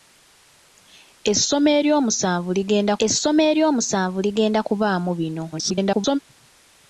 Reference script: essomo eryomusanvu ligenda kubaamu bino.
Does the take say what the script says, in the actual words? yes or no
no